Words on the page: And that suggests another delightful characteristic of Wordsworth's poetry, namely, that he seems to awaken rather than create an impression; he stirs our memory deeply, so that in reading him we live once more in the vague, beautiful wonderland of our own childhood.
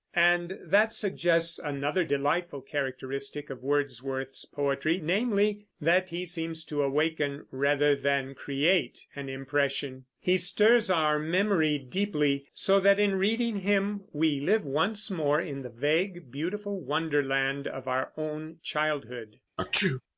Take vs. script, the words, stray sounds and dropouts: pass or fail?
fail